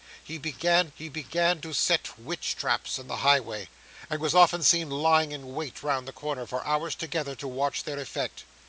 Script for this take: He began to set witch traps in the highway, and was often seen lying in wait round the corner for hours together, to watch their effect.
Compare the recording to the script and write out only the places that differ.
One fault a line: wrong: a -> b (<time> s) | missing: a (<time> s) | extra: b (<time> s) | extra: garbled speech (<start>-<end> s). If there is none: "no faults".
extra: he began (0.9 s)